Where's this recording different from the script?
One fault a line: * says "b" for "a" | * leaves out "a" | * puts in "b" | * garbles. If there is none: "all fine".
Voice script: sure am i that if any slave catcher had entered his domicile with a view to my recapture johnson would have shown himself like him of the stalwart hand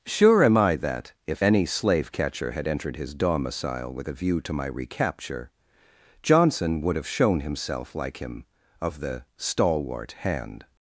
all fine